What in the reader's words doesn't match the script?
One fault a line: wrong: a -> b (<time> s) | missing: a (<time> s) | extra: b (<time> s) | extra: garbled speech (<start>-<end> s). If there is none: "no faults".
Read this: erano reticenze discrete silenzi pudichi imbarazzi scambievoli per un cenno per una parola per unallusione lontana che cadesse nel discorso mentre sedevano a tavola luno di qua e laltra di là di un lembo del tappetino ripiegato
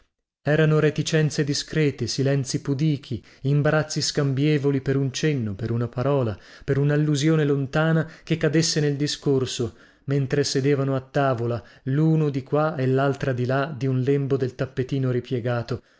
no faults